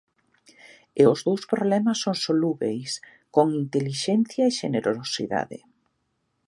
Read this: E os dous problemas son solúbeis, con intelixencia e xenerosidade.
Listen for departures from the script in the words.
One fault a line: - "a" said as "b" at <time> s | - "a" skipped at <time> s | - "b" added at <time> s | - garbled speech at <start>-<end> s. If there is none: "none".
none